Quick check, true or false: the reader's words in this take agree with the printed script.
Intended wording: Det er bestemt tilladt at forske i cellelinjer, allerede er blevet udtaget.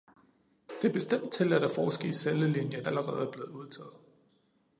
true